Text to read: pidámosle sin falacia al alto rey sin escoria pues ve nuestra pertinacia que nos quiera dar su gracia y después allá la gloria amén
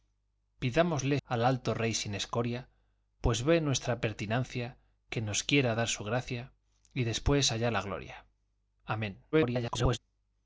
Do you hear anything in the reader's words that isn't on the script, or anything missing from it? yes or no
yes